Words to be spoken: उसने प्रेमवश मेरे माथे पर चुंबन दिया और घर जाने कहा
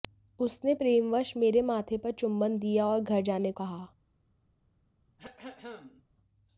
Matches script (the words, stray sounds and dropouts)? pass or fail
fail